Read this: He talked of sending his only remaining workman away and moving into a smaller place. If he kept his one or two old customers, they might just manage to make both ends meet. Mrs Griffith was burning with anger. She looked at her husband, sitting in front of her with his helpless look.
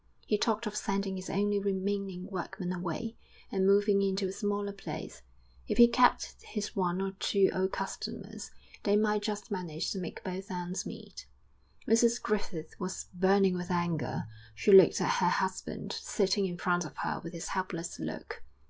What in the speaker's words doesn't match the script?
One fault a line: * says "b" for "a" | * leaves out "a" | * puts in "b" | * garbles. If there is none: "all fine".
all fine